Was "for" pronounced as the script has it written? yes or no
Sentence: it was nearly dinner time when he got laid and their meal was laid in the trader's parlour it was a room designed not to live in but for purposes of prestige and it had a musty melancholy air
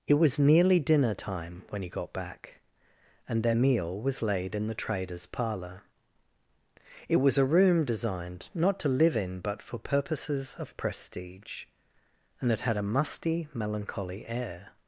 yes